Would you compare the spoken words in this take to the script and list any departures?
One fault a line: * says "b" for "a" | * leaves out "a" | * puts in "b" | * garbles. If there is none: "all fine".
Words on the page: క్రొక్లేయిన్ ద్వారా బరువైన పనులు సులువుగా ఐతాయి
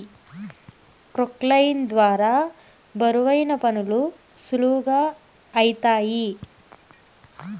all fine